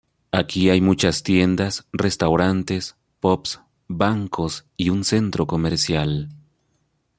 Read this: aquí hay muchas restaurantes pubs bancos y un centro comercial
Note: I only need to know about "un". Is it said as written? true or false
true